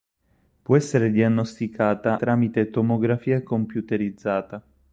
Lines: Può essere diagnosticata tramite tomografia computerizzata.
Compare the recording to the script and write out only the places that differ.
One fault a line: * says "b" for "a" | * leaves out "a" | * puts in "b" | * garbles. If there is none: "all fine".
all fine